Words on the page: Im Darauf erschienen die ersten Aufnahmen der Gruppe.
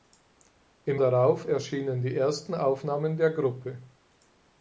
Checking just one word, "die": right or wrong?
right